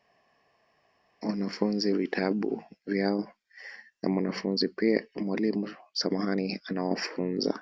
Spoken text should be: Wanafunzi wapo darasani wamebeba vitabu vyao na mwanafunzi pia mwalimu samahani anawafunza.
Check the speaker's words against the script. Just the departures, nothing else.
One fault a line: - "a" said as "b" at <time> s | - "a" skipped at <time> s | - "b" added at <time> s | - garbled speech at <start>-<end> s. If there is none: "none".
- "wapo darasani wamebeba" skipped at 1.9 s